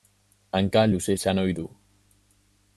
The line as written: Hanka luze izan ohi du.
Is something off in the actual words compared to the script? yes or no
no